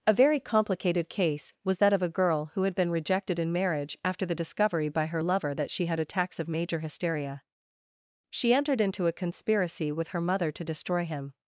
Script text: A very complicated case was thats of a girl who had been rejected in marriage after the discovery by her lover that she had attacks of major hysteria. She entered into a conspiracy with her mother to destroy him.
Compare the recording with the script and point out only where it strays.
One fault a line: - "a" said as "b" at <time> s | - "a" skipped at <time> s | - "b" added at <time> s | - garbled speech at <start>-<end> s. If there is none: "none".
- "thats" said as "that" at 1.8 s